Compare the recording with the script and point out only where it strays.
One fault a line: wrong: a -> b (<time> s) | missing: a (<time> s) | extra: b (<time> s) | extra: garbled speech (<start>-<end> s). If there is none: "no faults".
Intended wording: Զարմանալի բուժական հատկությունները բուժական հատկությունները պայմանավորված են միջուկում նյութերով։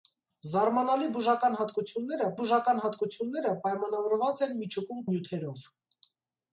no faults